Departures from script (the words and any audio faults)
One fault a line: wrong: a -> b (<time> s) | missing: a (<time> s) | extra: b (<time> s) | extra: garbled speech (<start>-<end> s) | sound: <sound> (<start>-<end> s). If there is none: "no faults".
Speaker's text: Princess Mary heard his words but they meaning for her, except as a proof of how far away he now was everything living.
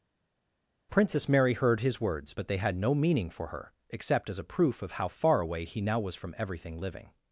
extra: had no (2.6 s)
extra: from (6.2 s)